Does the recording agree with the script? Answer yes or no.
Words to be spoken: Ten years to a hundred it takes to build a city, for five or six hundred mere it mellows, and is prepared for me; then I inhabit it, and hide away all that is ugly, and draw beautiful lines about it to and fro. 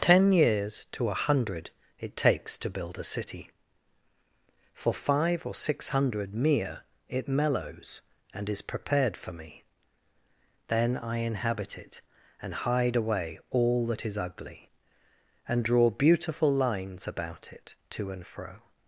yes